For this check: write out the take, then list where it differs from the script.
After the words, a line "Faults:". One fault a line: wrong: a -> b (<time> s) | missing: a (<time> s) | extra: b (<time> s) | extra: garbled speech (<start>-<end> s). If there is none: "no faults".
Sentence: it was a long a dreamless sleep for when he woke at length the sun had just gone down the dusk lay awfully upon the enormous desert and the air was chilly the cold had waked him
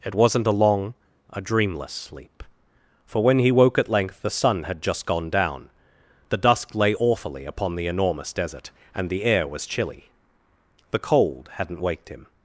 it wasn't a long a dreamless sleep for when he woke at length the sun had just gone down the dusk lay awfully upon the enormous desert and the air was chilly the cold hadn't waked him
Faults:
wrong: was -> wasn't (0.1 s)
wrong: had -> hadn't (11.5 s)